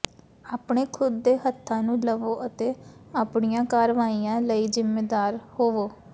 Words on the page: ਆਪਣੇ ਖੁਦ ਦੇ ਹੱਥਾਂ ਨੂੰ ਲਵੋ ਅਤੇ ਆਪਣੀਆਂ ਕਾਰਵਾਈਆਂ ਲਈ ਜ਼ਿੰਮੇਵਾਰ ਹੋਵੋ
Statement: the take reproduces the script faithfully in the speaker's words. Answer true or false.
true